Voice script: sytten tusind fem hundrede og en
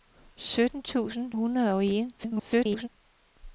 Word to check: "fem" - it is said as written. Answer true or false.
false